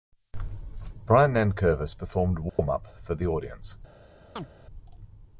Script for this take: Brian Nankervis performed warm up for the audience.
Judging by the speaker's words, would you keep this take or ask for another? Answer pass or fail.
pass